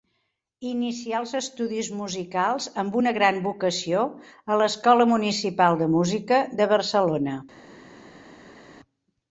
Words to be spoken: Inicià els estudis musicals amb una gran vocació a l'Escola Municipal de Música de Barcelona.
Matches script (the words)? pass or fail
pass